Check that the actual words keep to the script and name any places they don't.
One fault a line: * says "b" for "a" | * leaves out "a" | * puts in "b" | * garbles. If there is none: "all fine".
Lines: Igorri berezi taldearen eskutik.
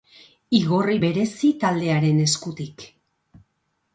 all fine